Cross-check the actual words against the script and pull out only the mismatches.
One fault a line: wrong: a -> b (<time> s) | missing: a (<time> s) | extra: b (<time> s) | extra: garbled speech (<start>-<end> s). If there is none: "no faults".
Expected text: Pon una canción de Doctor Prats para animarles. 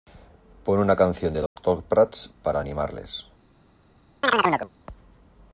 no faults